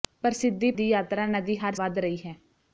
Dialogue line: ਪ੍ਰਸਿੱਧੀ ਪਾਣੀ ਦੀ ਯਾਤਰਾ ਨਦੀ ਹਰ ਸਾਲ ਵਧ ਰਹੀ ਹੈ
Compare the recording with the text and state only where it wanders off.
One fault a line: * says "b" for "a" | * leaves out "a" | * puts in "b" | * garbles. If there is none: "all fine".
* leaves out "ਪਾਣੀ"
* leaves out "ਸਾਲ"